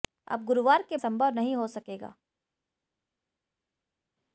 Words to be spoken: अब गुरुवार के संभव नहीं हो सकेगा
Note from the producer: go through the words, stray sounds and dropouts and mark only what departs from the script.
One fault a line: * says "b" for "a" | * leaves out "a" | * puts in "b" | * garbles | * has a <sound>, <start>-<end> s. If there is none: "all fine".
all fine